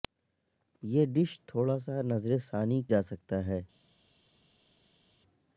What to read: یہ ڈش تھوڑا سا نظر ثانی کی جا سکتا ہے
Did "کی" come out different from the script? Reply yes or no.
yes